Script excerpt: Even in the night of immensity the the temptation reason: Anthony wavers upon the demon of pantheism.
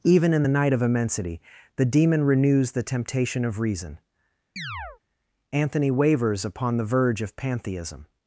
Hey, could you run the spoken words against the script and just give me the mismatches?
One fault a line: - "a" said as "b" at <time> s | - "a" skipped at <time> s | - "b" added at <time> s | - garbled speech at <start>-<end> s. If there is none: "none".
- "demon renews" added at 1.8 s
- "of" added at 3.4 s
- "demon" said as "verge" at 6.8 s